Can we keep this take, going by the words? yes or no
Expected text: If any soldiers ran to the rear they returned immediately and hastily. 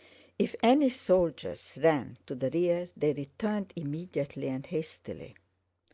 yes